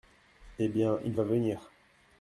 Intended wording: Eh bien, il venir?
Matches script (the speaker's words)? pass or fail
fail